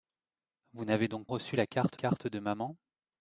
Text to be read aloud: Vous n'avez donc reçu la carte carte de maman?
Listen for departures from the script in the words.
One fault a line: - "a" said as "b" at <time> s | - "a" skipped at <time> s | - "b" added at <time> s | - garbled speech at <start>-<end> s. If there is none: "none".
none